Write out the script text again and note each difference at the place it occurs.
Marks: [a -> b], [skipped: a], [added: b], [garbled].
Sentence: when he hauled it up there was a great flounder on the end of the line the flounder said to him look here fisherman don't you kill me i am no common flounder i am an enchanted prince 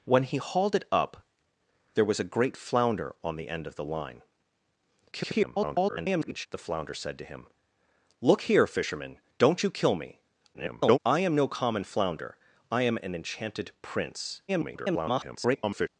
when he hauled it up there was a great flounder on the end of the line [garbled] the flounder said to him look here fisherman don't you kill me [garbled] i am no common flounder i am an enchanted prince [garbled]